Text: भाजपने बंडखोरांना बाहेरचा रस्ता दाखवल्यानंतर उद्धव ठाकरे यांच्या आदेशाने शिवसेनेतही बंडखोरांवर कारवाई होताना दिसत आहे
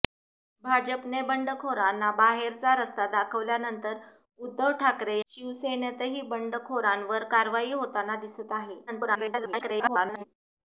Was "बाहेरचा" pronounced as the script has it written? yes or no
yes